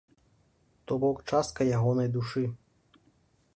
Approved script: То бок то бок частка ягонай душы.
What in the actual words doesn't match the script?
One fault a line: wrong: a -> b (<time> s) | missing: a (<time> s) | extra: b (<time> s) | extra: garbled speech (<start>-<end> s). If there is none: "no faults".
missing: то бок (1.2 s)